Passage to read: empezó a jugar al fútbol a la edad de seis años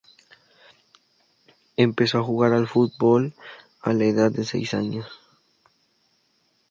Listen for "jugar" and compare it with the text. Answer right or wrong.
right